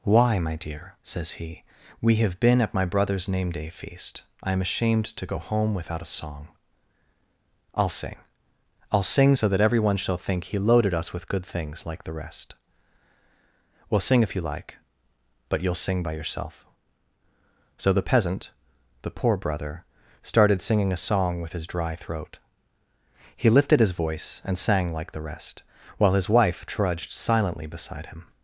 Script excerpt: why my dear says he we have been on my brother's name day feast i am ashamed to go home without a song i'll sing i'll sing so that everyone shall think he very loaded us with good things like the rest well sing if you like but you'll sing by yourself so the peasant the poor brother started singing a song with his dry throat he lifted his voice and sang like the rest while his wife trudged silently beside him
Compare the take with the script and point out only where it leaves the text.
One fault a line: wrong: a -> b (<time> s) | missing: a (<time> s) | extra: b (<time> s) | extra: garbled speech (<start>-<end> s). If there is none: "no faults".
wrong: on -> at (2.6 s)
missing: very (10.6 s)